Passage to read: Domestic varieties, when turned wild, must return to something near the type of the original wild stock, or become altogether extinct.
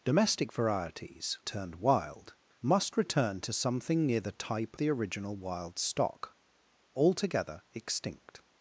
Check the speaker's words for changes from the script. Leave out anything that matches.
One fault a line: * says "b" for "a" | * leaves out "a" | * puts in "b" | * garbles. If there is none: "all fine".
* leaves out "when"
* leaves out "of"
* leaves out "or become"